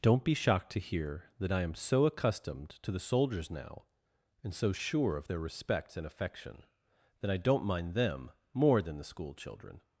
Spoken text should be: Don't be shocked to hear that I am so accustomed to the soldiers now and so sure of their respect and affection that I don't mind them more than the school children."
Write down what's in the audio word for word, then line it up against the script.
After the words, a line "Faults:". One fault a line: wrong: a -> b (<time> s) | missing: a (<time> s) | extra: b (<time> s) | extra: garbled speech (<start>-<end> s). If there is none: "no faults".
Don't be shocked to hear that I am so accustomed to the soldiers now and so sure of their respect and affection that I don't mind them more than the school children."
Faults:
no faults